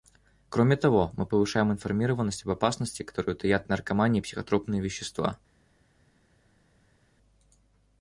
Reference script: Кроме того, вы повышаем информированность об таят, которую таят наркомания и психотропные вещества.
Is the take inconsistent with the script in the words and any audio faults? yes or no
yes